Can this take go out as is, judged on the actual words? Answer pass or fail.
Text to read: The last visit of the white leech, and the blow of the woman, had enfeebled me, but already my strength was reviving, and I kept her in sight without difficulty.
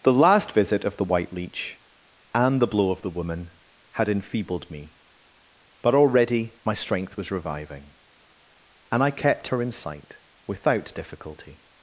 pass